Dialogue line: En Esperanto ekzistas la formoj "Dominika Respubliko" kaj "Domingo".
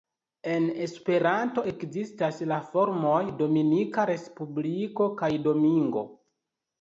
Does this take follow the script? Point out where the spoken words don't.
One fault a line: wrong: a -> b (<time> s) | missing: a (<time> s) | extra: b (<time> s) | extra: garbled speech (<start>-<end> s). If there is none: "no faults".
no faults